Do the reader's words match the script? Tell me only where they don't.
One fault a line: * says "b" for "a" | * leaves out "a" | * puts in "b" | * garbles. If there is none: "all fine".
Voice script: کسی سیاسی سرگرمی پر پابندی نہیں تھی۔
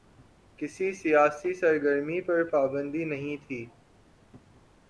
all fine